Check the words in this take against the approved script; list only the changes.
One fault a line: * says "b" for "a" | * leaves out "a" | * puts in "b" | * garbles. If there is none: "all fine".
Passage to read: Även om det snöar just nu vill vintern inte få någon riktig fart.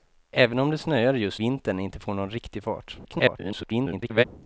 * leaves out "nu vill"
* garbles